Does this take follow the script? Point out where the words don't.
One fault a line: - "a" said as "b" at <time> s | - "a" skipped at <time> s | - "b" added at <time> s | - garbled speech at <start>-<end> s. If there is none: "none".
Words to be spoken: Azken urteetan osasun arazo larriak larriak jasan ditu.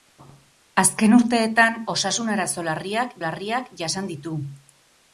none